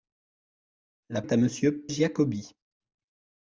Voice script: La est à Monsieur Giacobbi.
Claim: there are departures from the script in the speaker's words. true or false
false